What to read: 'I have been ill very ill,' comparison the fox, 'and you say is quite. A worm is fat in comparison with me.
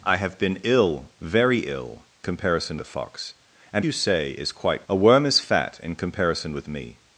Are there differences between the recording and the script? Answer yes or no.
no